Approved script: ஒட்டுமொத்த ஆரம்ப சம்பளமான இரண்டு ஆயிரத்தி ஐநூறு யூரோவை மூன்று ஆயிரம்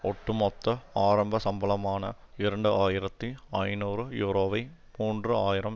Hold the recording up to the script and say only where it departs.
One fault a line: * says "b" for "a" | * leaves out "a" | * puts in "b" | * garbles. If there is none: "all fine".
all fine